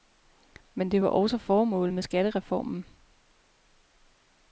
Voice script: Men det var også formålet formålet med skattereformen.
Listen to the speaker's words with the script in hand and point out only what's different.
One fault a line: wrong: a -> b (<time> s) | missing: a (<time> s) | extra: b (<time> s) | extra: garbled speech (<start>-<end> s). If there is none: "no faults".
missing: formålet (1.9 s)